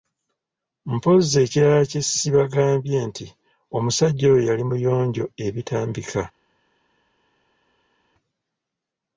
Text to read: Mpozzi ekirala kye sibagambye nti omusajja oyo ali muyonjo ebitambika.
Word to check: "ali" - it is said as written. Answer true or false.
false